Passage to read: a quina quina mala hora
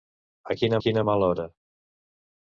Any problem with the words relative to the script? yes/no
no